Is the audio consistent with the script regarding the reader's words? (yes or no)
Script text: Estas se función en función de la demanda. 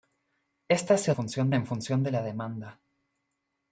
yes